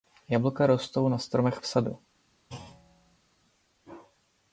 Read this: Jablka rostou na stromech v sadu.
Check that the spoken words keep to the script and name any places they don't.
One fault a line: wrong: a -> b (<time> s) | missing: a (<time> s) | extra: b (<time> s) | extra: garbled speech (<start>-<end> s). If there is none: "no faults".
no faults